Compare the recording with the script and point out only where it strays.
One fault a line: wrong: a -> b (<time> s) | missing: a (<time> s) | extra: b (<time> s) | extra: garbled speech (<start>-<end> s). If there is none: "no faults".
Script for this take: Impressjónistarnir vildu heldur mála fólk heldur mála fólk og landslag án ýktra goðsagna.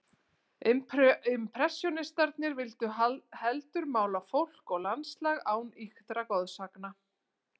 missing: heldur mála fólk (4.8 s)